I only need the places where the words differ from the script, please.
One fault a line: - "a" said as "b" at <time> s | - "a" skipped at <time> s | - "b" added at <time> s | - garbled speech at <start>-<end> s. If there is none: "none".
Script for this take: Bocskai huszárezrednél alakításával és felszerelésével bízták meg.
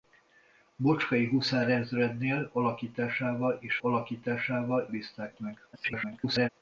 - "felszerelésével" said as "alakításával" at 3.8 s
- garbled speech at 5.7-6.5 s